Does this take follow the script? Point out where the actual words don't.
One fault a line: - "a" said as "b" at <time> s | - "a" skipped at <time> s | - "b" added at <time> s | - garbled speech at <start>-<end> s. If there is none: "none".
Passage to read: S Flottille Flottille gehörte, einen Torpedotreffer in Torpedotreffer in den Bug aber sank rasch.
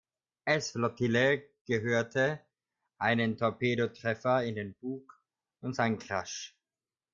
- "Flottille" skipped at 1.5 s
- "Torpedotreffer in" skipped at 4.6 s
- "aber" said as "und" at 5.6 s